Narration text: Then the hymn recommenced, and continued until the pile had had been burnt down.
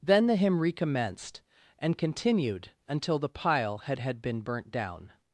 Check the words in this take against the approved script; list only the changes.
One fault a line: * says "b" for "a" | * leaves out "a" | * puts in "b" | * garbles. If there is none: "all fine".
all fine